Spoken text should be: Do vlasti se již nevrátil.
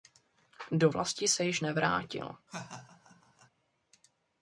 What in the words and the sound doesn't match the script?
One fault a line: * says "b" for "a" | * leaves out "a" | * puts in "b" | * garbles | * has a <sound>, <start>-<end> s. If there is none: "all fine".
* has a laugh, 2.5-3.5 s